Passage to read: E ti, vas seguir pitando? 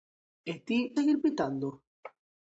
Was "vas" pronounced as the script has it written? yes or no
no